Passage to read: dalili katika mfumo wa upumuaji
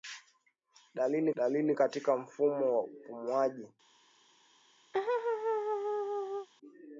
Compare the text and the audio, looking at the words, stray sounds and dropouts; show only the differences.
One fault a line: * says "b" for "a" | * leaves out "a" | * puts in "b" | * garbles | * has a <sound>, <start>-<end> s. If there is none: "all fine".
* puts in "dalili"
* has a laugh, 4.9-6.5 s